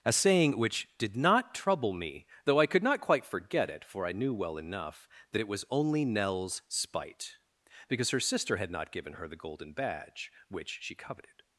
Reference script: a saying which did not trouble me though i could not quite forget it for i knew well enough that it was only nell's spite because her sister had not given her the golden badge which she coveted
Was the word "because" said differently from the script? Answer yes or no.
no